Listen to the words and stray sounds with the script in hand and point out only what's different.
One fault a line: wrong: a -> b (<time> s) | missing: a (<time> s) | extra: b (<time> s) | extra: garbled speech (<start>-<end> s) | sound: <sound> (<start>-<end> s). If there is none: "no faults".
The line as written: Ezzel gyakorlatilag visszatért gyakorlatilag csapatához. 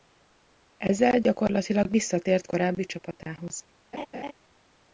wrong: gyakorlatilag -> korábbi (2.4 s)
sound: laugh (3.9-4.3 s)